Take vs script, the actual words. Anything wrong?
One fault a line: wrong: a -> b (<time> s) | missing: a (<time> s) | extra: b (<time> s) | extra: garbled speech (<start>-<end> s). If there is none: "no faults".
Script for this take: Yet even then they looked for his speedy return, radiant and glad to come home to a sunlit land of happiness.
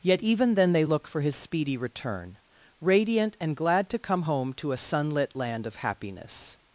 wrong: looked -> look (0.8 s)